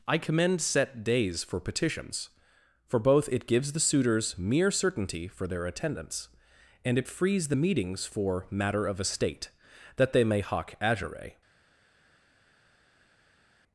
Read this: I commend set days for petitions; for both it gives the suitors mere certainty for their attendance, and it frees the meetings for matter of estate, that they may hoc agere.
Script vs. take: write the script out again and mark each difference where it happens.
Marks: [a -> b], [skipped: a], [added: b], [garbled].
I commend set days for petitions; for both it gives the suitors mere certainty for their attendance, and it frees the meetings for matter of estate, that they may hoc agere.